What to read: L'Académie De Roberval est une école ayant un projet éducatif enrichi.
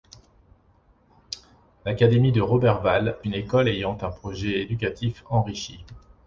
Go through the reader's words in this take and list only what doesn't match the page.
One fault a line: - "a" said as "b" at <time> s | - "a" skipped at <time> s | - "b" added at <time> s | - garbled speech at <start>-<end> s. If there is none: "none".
- "est" skipped at 3.2 s